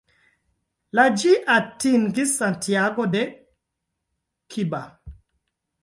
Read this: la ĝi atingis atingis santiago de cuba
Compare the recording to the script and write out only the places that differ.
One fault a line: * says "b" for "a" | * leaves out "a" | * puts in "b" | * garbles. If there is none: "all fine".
* leaves out "atingis"